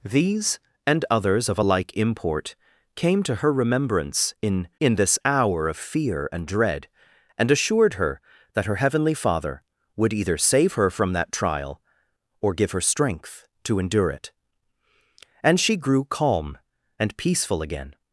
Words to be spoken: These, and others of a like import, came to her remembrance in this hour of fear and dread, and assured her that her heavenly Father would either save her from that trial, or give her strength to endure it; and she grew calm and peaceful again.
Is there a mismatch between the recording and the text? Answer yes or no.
yes